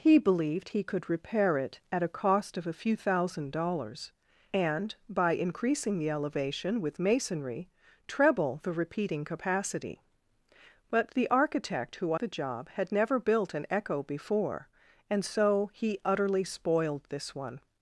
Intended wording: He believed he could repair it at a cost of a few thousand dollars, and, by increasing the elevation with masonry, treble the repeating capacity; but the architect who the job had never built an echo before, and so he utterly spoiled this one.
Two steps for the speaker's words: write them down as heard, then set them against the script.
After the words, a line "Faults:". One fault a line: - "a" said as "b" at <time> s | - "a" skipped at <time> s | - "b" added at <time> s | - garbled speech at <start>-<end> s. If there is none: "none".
He believed he could repair it at a cost of a few thousand dollars, and, by increasing the elevation with masonry, treble the repeating capacity; but the architect who the job had never built an echo before, and so he utterly spoiled this one.
Faults:
none